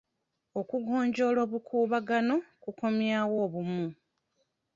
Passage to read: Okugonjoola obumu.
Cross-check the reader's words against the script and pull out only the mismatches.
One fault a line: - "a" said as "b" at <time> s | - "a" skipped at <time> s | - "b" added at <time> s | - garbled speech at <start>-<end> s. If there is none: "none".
- "obukuubagano kukomyawo" added at 1.4 s